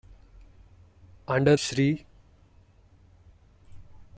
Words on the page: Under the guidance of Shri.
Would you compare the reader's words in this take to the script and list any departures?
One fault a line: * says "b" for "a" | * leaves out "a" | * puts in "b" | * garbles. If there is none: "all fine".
* leaves out "the guidance of"